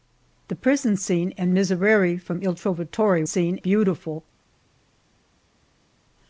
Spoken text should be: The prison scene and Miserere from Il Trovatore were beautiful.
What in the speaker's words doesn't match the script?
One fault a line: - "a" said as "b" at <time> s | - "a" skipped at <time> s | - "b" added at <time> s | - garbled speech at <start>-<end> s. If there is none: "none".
- "were" said as "scene" at 3.2 s